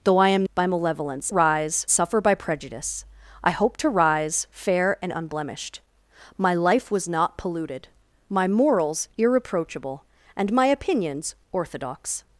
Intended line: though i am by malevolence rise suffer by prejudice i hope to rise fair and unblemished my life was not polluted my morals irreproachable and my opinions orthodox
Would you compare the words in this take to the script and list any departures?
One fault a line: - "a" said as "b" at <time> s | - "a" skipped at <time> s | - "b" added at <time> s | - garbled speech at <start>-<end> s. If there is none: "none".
none